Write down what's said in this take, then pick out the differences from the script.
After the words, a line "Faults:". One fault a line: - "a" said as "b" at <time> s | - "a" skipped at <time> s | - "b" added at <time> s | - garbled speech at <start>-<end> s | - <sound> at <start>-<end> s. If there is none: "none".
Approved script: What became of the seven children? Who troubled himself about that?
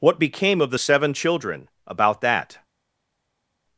What became of the seven children? about that?
Faults:
- "Who troubled himself" skipped at 1.7 s